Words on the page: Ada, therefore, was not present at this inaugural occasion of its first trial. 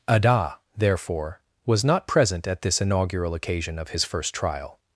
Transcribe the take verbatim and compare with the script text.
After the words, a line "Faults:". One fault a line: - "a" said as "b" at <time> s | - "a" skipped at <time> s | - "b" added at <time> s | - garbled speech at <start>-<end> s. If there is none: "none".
Ada, therefore, was not present at this inaugural occasion of his first trial.
Faults:
- "its" said as "his" at 3.9 s